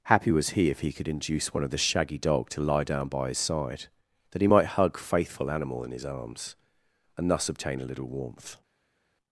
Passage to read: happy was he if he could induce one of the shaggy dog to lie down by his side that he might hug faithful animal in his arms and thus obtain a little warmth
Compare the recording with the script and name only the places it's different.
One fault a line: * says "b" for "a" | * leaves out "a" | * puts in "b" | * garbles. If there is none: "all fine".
all fine